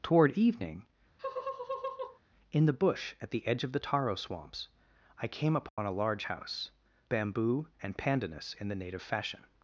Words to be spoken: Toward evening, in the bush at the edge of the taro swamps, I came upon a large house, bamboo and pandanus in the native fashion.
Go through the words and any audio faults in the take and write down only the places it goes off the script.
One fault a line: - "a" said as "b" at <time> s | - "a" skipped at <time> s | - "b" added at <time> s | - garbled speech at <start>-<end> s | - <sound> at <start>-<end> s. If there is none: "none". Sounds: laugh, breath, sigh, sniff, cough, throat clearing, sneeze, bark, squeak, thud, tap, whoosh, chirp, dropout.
- laugh at 1.2-2.2 s
- dropout at 5.7-5.8 s